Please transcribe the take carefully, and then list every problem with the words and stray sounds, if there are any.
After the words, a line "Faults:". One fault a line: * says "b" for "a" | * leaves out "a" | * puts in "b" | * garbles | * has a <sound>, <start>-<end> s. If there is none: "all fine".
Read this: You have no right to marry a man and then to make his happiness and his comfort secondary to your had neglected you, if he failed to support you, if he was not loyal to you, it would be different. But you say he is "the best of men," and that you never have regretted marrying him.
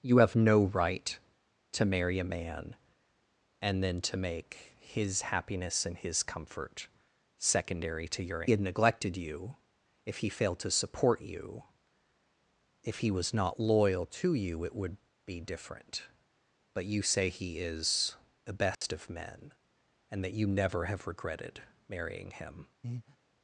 You have no right to marry a man and then to make his happiness and his comfort secondary to your had neglected you, if he failed to support you, if he was not loyal to you, it would be different. But you say he is "the best of men," and that you never have regretted marrying him.
Faults:
* has a dropout, 18.7-18.8 s
* has a breath, 22.8-23.2 s